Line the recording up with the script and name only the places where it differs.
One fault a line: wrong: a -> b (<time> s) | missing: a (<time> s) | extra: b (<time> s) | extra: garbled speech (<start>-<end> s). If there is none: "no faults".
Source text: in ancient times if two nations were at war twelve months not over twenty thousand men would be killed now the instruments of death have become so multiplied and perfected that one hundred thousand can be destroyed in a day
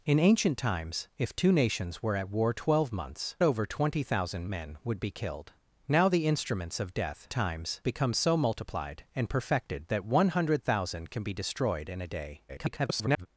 missing: not (3.4 s)
wrong: have -> times (7.3 s)
extra: garbled speech (12.5-13.3 s)